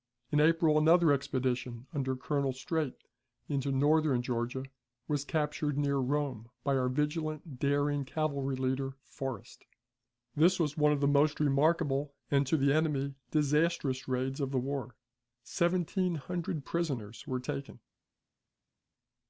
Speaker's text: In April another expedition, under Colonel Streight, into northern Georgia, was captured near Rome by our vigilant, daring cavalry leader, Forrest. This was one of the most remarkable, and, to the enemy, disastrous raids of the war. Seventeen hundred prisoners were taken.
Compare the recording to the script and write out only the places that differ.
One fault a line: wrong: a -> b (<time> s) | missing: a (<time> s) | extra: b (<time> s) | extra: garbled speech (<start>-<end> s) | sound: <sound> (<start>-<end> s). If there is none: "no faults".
no faults